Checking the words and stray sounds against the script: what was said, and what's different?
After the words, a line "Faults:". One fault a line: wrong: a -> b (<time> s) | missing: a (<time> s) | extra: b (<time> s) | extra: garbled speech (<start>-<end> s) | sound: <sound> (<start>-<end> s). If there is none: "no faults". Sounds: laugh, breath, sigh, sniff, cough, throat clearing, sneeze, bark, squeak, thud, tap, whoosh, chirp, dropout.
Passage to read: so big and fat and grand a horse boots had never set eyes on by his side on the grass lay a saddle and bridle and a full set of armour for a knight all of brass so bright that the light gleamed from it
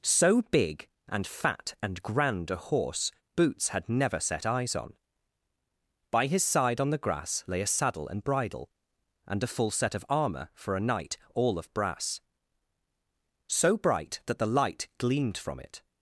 so big and fat and grand a horse boots had never set eyes on by his side on the grass lay a saddle and bridle and a full set of armour for a knight all of brass so bright that the light gleamed from it
Faults:
no faults